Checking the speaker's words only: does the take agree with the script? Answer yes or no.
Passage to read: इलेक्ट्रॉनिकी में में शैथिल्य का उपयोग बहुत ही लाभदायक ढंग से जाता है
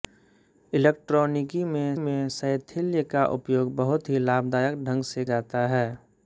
yes